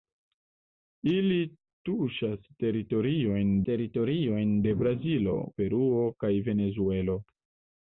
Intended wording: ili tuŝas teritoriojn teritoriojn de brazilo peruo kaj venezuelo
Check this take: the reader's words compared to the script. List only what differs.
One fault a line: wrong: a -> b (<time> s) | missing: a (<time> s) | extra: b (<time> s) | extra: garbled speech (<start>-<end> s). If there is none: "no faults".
no faults